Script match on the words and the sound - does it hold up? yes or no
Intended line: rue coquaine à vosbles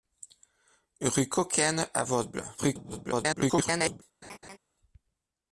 no